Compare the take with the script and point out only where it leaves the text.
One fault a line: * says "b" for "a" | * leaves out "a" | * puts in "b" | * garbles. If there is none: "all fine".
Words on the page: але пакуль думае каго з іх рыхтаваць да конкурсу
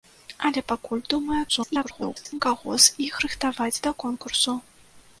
* garbles